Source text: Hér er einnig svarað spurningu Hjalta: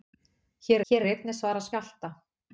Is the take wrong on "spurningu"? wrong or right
wrong